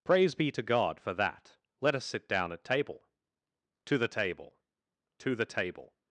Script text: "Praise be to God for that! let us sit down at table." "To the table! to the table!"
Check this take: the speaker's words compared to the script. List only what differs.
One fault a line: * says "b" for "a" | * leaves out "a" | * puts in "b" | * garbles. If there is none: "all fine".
all fine